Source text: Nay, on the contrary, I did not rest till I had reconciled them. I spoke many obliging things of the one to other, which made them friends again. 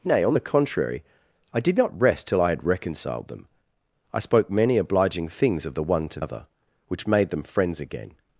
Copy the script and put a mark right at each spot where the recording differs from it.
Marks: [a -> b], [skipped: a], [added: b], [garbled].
Nay, on the contrary, I did not rest till I had reconciled them. I spoke many obliging things of the one to other, which made them friends again.